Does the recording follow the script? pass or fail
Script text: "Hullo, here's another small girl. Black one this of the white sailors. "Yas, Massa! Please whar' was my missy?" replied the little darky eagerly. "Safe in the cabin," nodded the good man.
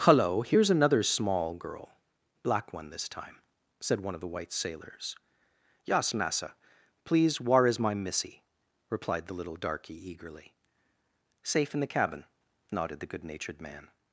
fail